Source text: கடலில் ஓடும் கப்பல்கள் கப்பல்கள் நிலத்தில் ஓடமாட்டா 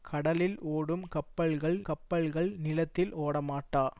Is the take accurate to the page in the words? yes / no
yes